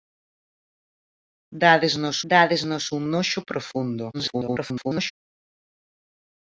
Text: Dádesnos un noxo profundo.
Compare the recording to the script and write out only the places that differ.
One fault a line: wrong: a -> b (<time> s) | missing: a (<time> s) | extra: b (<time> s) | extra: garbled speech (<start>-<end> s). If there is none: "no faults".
extra: dádesnos (2.3 s)
extra: garbled speech (4.1-5.1 s)